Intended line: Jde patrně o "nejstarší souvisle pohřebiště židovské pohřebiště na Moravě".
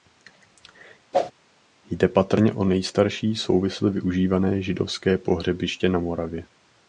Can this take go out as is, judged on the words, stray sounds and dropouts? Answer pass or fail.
fail